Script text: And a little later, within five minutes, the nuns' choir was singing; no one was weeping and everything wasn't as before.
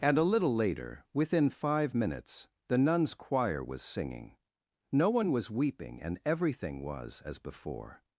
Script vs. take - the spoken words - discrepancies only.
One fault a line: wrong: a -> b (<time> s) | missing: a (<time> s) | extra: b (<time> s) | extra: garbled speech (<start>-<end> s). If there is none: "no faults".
wrong: wasn't -> was (6.8 s)